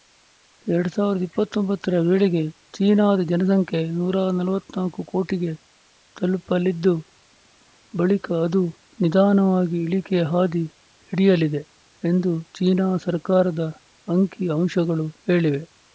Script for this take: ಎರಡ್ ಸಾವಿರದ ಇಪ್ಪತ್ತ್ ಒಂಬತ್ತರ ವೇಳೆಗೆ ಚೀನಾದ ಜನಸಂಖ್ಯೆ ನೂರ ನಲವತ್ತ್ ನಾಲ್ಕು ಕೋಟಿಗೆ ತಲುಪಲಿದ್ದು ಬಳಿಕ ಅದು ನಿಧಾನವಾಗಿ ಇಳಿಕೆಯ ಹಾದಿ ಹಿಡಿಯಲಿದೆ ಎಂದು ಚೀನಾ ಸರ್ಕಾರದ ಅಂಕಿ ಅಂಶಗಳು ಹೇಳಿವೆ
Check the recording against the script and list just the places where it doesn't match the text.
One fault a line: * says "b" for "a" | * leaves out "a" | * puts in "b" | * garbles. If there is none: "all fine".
all fine